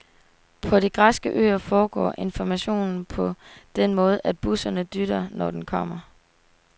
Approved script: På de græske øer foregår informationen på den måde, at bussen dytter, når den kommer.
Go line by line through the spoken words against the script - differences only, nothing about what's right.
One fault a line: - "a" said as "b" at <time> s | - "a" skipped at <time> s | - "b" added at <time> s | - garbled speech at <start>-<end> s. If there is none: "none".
none